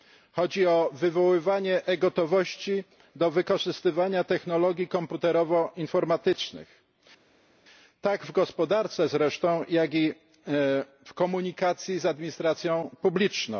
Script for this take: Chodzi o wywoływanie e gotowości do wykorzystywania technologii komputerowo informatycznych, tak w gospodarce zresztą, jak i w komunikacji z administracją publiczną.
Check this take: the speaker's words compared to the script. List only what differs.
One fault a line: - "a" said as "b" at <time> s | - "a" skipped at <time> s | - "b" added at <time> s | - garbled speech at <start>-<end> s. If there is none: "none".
none